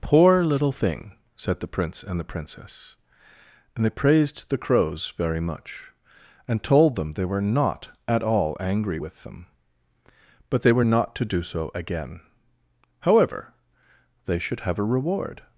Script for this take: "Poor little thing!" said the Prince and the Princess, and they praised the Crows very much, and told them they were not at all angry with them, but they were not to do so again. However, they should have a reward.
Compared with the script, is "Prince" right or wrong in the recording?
right